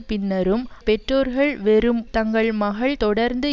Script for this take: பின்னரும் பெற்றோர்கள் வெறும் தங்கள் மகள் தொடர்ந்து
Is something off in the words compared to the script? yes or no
no